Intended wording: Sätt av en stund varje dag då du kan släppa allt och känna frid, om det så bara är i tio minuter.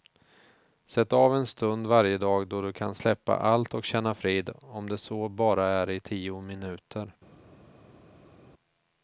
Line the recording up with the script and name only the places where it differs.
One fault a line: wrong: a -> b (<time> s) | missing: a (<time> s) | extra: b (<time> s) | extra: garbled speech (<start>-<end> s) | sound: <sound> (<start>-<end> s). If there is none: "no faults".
no faults